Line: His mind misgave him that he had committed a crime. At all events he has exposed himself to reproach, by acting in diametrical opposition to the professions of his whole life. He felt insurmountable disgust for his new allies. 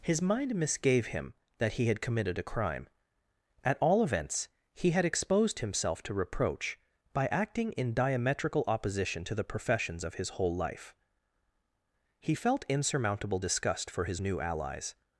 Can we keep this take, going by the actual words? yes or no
no